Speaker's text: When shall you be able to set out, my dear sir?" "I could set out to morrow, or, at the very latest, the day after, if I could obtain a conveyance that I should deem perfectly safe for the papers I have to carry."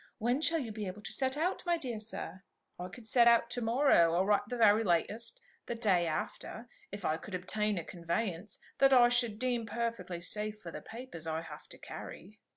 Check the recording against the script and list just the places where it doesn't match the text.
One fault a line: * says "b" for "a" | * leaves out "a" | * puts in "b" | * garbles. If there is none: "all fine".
all fine